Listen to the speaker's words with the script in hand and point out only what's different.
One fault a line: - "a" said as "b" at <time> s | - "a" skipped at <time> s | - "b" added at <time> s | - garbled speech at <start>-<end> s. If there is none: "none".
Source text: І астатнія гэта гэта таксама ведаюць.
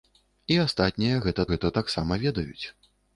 none